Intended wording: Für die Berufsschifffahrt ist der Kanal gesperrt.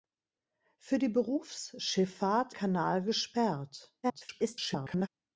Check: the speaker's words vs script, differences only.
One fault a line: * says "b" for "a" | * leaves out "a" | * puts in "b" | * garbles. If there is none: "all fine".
* leaves out "ist der"
* garbles